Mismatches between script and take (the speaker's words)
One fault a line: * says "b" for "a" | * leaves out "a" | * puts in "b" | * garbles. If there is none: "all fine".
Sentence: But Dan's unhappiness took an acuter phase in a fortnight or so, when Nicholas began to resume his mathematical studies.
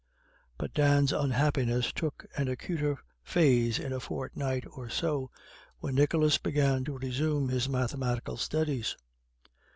all fine